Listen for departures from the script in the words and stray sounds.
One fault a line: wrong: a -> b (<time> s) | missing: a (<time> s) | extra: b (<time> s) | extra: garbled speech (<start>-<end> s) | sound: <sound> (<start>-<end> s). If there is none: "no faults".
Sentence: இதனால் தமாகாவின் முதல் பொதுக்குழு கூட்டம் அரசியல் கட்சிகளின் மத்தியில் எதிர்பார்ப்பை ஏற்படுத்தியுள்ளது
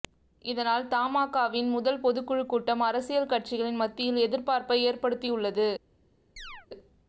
sound: chirp (6.4-6.7 s)